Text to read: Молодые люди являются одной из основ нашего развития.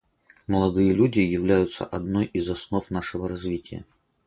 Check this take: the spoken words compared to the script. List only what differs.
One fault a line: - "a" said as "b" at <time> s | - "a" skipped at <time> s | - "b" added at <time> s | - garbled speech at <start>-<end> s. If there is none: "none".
none